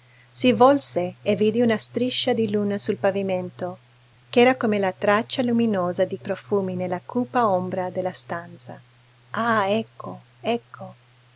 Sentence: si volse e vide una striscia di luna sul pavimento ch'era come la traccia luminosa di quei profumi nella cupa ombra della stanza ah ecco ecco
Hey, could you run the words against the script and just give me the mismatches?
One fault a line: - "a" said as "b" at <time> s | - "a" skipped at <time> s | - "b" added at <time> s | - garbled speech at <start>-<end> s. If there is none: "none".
- "quei" skipped at 6.2 s